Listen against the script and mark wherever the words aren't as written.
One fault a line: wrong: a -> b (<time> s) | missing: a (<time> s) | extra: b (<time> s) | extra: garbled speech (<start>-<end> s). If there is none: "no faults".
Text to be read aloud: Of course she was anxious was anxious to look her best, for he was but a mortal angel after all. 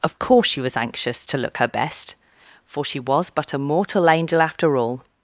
missing: was anxious (1.3 s)
wrong: he -> she (2.8 s)